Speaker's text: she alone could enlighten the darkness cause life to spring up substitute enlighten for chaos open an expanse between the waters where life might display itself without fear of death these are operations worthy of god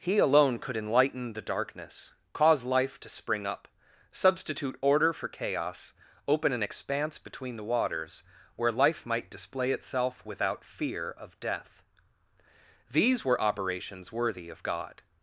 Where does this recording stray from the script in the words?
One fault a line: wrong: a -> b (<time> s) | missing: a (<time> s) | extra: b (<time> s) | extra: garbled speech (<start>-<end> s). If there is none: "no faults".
wrong: she -> he (0.0 s)
wrong: enlighten -> order (4.8 s)
wrong: are -> were (13.2 s)